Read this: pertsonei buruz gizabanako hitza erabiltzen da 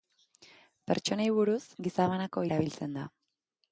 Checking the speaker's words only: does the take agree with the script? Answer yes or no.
no